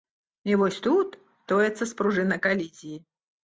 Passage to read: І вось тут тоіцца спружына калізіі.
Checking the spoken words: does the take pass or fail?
pass